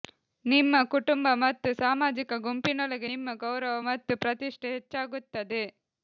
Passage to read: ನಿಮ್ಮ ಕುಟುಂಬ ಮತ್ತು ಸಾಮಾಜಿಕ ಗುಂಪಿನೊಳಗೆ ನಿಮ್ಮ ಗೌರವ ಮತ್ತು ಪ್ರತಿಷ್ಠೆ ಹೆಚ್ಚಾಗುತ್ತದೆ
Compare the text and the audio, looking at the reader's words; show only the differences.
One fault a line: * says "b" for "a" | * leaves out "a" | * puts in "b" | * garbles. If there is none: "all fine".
all fine